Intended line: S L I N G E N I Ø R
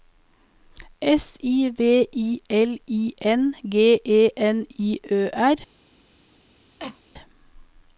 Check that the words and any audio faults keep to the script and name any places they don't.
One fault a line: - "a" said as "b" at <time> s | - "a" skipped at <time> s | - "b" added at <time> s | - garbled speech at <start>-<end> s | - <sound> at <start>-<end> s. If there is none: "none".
- "I V I" added at 1.4 s
- cough at 6.8-7.0 s